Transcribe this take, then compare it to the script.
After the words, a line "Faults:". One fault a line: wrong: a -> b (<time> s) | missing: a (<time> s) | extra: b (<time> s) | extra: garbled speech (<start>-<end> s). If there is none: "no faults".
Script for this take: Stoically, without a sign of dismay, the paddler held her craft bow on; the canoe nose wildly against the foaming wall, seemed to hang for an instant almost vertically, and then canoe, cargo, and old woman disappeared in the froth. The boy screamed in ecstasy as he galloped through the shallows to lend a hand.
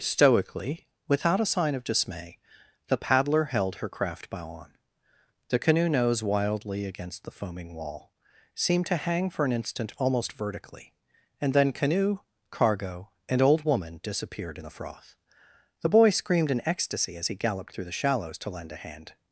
Stoically, without a sign of dismay, the paddler held her craft bow on; the canoe nose wildly against the foaming wall, seemed to hang for an instant almost vertically, and then canoe, cargo, and old woman disappeared in the froth. The boy screamed in ecstasy as he galloped through the shallows to lend a hand.
Faults:
no faults